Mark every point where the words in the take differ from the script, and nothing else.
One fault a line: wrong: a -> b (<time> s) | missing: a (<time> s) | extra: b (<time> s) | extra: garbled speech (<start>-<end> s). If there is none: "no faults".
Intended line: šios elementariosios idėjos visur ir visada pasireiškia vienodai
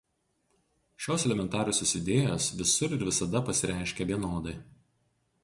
no faults